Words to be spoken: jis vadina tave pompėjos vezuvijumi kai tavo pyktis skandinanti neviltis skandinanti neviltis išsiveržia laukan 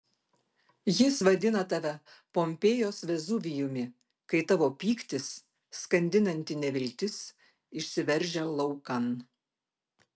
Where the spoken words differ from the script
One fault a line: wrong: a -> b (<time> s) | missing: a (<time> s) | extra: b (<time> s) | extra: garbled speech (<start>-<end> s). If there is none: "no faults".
missing: skandinanti neviltis (7.2 s)